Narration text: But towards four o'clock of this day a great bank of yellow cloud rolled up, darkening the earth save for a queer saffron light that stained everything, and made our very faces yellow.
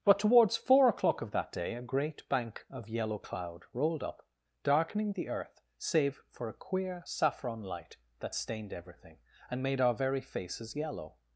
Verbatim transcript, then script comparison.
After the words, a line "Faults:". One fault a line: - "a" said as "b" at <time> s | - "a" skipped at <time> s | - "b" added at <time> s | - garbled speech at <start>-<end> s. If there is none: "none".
But towards four o'clock of that day a great bank of yellow cloud rolled up, darkening the earth save for a queer saffron light that stained everything, and made our very faces yellow.
Faults:
- "this" said as "that" at 1.3 s